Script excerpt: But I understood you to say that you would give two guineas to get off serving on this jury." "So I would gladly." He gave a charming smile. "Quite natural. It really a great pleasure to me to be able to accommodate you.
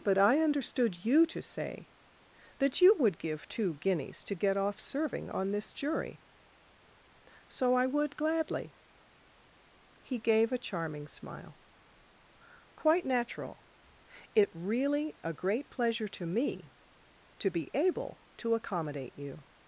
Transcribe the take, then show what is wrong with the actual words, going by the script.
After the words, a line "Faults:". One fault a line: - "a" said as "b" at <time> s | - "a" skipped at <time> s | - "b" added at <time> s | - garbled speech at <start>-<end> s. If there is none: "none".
But I understood you to say that you would give two guineas to get off serving on this jury." "So I would gladly." He gave a charming smile. "Quite natural. It really a great pleasure to me to be able to accommodate you.
Faults:
none